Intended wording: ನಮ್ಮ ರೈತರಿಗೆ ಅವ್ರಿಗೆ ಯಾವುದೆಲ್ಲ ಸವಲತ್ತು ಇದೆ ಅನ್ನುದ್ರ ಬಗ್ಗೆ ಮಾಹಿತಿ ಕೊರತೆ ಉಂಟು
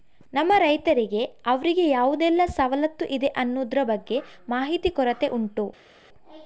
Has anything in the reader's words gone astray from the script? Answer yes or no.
no